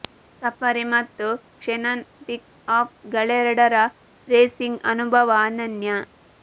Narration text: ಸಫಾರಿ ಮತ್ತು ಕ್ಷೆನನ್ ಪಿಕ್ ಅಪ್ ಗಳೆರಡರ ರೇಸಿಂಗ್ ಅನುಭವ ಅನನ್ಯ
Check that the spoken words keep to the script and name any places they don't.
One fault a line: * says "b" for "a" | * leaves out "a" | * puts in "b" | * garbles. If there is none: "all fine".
all fine